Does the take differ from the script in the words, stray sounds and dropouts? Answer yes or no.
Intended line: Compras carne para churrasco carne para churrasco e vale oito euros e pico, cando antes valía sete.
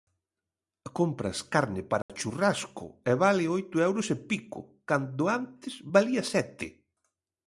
yes